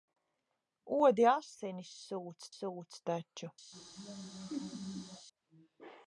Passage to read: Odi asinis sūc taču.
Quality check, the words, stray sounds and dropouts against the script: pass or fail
fail